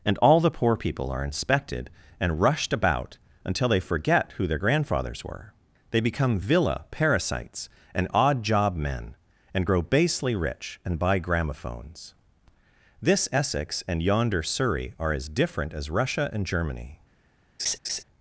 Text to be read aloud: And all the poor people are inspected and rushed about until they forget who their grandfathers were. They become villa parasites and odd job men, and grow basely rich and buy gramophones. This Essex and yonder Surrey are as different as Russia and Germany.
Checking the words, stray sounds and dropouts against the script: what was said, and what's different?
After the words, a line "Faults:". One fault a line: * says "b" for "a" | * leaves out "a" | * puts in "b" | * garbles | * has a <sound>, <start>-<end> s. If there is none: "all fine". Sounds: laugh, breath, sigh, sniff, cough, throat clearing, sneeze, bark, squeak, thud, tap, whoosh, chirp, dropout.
And all the poor people are inspected and rushed about until they forget who their grandfathers were. They become villa parasites and odd job men, and grow basely rich and buy gramophones. This Essex and yonder Surrey are as different as Russia and Germany.
Faults:
* has a laugh, 17.6-18.0 s